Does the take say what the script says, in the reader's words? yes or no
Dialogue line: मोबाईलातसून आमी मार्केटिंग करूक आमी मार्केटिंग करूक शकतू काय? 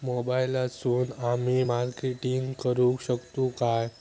no